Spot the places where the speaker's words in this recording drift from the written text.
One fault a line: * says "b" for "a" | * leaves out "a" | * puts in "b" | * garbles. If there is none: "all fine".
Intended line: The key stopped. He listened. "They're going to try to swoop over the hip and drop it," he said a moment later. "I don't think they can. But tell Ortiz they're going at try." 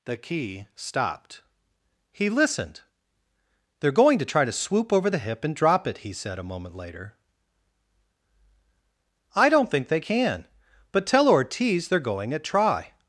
all fine